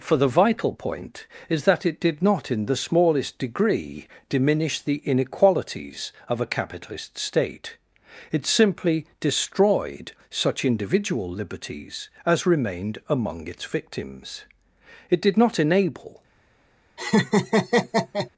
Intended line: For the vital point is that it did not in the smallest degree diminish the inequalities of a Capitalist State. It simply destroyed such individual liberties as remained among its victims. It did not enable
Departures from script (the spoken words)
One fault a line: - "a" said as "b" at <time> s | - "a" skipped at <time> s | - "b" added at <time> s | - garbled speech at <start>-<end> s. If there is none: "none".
none